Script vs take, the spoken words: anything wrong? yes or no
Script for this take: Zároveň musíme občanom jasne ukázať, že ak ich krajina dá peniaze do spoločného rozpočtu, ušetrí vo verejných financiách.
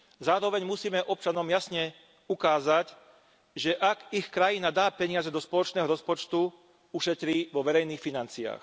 no